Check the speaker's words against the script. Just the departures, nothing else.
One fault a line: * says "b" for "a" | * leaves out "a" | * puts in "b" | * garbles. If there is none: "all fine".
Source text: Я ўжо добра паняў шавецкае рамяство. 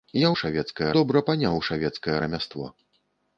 * says "шавецкае" for "ўжо"